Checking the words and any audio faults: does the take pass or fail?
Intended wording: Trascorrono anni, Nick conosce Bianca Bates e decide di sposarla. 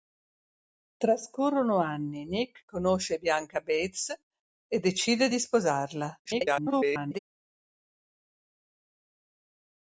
fail